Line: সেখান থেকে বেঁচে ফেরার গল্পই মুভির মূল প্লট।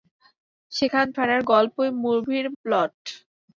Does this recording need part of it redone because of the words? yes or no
yes